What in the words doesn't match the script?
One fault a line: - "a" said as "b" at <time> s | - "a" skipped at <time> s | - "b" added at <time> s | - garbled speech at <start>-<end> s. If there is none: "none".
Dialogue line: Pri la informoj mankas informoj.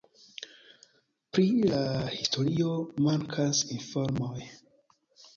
- "informoj" said as "historio" at 2.1 s